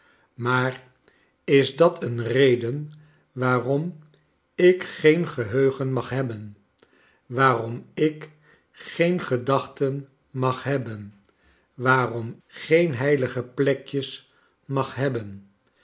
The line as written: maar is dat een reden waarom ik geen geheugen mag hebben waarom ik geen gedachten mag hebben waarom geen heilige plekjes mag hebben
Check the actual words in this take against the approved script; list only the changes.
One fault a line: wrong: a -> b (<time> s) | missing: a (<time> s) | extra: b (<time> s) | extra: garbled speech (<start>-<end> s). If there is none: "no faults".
no faults